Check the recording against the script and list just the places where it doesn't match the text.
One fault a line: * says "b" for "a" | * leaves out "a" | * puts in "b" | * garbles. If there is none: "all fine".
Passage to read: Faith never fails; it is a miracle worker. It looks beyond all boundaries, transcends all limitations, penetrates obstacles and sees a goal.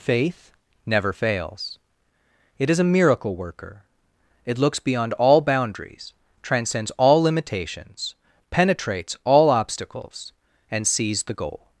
* puts in "all"
* says "the" for "a"